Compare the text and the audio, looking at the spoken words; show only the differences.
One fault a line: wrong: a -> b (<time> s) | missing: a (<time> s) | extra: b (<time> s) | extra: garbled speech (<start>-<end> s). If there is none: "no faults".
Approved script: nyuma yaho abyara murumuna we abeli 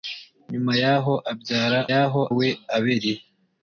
wrong: murumuna -> yaho (1.9 s)